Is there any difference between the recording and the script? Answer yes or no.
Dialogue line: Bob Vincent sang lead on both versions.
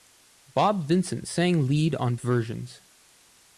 yes